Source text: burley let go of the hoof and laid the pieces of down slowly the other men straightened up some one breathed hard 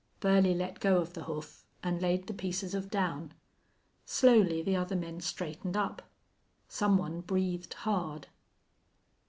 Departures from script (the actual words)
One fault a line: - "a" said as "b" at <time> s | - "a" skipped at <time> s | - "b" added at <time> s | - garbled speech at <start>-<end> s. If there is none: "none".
none